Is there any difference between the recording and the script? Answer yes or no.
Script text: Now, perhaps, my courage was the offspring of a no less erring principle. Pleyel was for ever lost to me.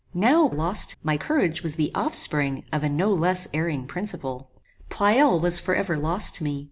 yes